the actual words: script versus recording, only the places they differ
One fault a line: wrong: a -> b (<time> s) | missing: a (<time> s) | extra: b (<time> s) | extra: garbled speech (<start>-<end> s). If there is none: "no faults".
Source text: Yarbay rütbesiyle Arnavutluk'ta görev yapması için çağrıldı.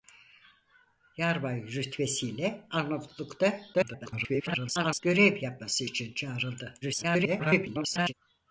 extra: garbled speech (3.7-5.0 s)
extra: garbled speech (6.8-8.1 s)